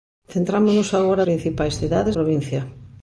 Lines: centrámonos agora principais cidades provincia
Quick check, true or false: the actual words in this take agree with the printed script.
true